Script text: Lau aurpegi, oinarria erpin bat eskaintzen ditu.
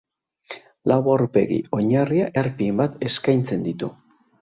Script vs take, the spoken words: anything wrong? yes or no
no